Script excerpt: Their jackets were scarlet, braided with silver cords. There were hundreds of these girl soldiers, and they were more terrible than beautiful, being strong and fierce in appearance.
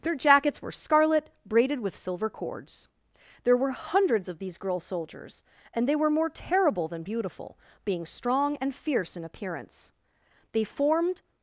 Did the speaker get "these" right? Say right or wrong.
right